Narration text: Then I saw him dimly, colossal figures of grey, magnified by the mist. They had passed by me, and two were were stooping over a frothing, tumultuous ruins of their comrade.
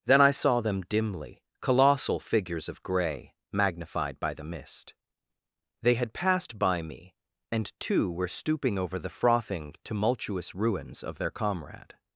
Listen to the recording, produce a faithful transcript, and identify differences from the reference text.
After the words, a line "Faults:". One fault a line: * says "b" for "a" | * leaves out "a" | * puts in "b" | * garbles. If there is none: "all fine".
Then I saw them dimly, colossal figures of grey, magnified by the mist. They had passed by me, and two were stooping over the frothing, tumultuous ruins of their comrade.
Faults:
* says "them" for "him"
* leaves out "were"
* says "the" for "a"